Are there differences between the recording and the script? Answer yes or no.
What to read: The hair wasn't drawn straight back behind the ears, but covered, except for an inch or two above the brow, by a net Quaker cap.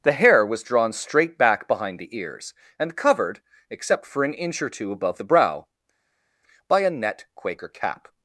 yes